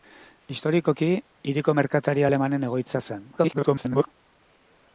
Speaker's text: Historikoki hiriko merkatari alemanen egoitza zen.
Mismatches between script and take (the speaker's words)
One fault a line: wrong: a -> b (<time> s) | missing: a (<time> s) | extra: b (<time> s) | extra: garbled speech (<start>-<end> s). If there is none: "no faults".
extra: garbled speech (3.4-4.1 s)